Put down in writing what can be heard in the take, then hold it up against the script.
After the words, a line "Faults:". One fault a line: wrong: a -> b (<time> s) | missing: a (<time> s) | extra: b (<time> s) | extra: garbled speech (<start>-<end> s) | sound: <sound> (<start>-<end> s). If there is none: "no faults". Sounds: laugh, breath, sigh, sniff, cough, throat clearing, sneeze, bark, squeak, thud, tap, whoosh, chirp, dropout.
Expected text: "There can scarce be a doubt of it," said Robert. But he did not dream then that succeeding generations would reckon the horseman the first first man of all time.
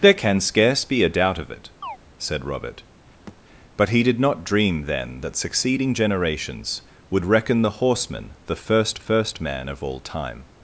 "There can scarce be a doubt of it," said Robert. But he did not dream then that succeeding generations would reckon the horseman the first first man of all time.
Faults:
sound: chirp (1.8-2.0 s)
sound: thud (3.3-3.4 s)